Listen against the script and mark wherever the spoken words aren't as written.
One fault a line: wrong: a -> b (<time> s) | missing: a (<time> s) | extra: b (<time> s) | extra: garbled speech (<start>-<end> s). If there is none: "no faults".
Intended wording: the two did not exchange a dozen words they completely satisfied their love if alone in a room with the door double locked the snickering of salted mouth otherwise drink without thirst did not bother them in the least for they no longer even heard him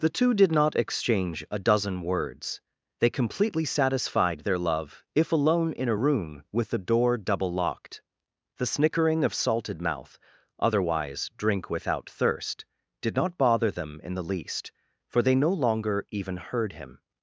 no faults